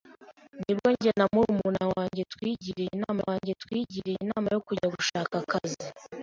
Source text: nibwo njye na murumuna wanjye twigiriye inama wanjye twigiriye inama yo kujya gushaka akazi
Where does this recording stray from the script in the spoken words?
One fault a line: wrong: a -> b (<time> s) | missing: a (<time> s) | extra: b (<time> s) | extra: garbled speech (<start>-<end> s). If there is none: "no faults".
no faults